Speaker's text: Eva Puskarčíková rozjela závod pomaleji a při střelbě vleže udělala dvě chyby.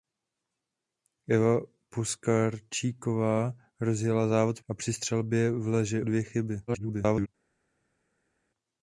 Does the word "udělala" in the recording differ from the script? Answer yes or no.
yes